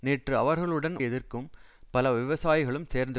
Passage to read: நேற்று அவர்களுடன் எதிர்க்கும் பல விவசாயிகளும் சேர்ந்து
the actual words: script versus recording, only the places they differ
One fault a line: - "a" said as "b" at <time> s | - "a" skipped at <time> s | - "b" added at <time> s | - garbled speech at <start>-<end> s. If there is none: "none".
none